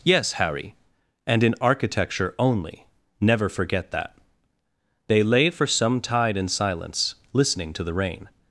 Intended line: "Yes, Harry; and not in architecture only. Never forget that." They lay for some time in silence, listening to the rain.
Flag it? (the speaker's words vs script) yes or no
yes